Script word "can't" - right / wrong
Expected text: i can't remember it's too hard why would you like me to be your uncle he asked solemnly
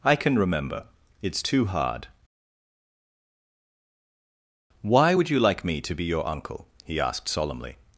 wrong